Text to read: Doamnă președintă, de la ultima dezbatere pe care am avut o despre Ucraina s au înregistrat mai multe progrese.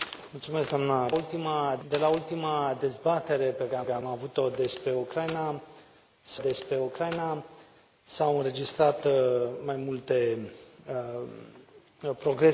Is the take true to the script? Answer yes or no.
no